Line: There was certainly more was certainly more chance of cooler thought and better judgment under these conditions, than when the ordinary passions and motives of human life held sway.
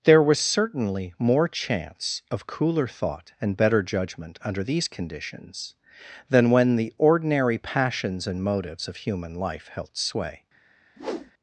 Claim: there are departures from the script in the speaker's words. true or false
true